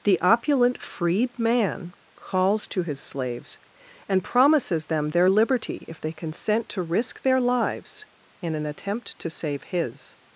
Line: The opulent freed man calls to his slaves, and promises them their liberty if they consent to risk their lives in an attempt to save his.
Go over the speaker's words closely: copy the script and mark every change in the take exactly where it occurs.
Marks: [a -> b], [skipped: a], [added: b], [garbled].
The opulent freed man calls to his slaves, and promises them their liberty if they consent to risk their lives in an attempt to save his.